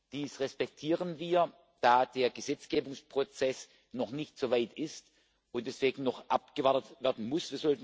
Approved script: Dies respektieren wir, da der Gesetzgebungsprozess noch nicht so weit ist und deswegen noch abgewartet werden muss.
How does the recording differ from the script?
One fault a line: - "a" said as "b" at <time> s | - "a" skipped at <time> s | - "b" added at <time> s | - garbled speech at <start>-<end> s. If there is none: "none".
none